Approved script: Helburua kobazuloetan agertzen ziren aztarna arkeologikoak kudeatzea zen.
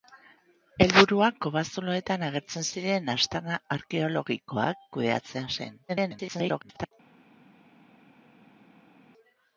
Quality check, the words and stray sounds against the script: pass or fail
fail